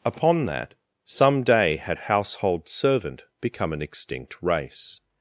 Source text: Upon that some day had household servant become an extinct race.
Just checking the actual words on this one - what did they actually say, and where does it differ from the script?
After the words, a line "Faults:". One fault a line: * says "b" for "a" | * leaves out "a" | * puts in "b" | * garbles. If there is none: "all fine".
Upon that some day had household servant become an extinct race.
Faults:
all fine